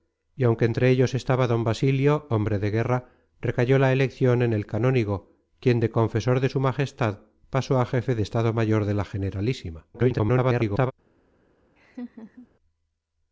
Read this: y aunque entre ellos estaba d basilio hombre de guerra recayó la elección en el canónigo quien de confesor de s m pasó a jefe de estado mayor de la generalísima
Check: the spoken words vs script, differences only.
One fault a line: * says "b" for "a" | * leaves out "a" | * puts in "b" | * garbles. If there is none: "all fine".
* garbles